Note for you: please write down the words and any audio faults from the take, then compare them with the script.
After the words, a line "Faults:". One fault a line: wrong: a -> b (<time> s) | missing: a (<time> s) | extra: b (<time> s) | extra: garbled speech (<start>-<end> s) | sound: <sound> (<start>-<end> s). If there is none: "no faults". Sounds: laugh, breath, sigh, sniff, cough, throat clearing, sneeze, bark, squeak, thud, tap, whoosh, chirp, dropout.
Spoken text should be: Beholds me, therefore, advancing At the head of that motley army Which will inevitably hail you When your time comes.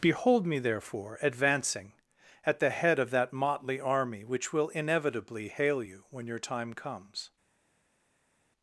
Behold me, therefore, advancing At the head of that motley army Which will inevitably hail you When your time comes.
Faults:
wrong: Beholds -> Behold (0.0 s)